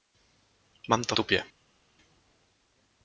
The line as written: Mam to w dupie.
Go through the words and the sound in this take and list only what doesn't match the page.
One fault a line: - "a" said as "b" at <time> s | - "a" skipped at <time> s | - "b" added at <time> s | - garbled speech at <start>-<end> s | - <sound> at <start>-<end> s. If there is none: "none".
- "w" skipped at 1.1 s